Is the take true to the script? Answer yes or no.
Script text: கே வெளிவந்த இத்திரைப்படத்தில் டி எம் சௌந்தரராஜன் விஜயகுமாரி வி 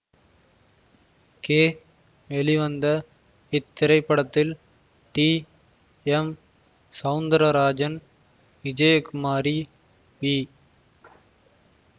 yes